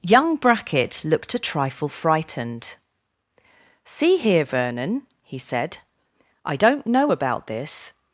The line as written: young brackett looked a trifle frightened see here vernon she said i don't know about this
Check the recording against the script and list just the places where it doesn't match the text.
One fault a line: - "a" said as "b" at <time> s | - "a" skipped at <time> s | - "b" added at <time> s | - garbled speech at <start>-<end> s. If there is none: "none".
- "she" said as "he" at 5.2 s